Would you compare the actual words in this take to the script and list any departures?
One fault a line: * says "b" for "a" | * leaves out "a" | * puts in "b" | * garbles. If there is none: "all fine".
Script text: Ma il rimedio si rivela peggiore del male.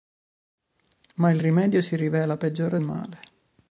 * leaves out "del"